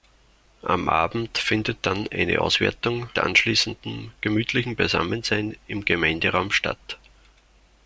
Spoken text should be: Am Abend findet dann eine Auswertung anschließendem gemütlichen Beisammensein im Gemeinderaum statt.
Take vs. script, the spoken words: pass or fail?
pass